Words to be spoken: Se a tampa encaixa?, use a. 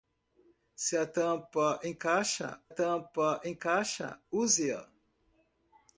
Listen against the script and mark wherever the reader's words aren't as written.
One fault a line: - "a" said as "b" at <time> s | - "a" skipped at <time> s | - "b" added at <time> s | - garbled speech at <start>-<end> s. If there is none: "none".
- "tampa encaixa" added at 2.7 s